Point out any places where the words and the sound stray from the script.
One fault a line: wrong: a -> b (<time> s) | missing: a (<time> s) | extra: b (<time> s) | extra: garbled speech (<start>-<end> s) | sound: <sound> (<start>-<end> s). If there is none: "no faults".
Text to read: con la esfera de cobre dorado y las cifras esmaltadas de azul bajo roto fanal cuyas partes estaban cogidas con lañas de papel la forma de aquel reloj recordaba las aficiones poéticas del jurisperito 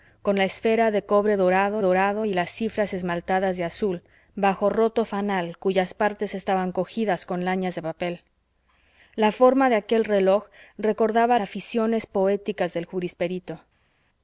extra: dorado (1.8 s)
missing: las (11.4 s)